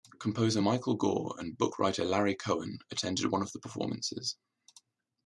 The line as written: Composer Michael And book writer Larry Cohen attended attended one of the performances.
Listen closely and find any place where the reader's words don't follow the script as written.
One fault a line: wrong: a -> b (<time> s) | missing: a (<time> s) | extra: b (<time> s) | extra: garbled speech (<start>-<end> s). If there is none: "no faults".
extra: Gore (1.0 s)
missing: attended (3.3 s)